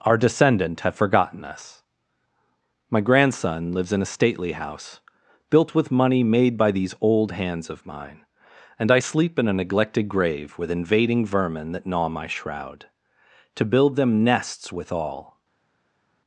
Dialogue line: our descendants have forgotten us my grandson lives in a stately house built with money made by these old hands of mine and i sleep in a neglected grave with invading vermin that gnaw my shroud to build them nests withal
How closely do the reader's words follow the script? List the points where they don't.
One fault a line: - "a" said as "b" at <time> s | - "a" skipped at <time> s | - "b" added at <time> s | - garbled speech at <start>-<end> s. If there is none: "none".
- "descendants" said as "descendant" at 0.2 s